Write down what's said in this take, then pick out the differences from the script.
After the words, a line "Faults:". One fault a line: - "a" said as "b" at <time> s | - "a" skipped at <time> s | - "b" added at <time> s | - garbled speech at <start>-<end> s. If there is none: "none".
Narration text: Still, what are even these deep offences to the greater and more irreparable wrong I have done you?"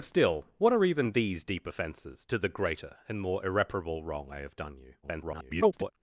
Still, what are even these deep offences to the greater and more irreparable wrong I have done you?" [garbled]
Faults:
- garbled speech at 5.0-5.9 s